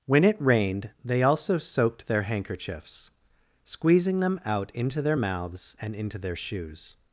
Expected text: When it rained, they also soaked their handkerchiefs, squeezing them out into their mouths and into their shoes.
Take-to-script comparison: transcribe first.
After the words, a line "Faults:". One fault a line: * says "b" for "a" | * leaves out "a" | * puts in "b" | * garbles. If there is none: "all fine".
When it rained, they also soaked their handkerchiefs, squeezing them out into their mouths and into their shoes.
Faults:
all fine